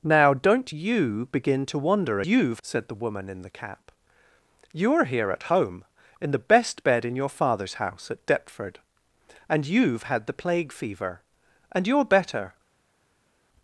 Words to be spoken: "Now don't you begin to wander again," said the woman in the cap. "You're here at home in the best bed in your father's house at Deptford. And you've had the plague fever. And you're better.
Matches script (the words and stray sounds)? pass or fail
fail